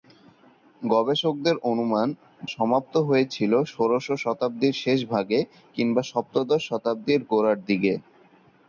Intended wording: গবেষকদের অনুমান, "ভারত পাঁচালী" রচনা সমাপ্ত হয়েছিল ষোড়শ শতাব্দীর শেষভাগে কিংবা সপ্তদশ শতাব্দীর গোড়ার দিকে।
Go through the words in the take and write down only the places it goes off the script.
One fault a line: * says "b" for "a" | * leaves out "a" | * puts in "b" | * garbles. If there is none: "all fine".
* leaves out "ভারত পাঁচালী রচনা"